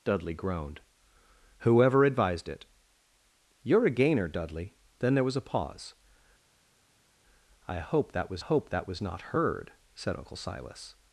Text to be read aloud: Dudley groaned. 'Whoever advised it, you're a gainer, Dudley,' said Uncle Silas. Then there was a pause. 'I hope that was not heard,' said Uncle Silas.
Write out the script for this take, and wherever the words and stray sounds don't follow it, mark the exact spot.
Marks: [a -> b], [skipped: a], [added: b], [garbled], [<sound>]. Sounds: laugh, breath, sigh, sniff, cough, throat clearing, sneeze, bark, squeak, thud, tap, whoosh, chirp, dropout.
Dudley groaned. 'Whoever advised it, you're a gainer, Dudley,' [skipped: said Uncle Silas.] Then there was a pause. 'I hope that was [added: hope that was] not heard,' said Uncle Silas.